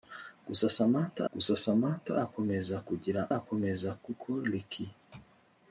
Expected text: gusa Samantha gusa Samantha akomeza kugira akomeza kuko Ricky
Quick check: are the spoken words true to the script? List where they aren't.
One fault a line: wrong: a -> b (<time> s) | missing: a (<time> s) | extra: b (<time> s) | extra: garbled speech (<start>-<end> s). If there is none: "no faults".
no faults